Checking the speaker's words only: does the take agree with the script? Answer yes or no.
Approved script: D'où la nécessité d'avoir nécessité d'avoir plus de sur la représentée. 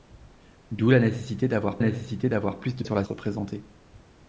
yes